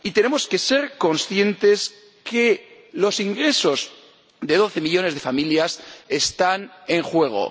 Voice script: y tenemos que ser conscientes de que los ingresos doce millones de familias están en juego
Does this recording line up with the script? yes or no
no